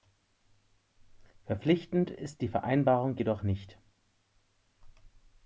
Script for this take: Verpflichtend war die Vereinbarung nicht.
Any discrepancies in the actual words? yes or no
yes